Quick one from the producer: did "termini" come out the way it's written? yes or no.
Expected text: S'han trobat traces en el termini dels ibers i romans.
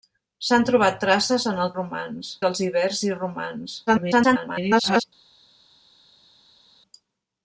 no